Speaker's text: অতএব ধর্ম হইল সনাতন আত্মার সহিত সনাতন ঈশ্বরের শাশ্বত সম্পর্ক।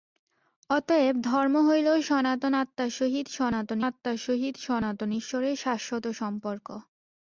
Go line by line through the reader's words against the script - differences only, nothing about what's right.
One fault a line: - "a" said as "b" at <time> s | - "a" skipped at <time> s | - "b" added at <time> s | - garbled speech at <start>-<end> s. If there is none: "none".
- "আত্মার সহিত সনাতন" added at 3.8 s